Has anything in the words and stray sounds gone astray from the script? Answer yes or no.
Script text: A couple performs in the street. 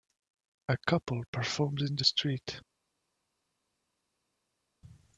no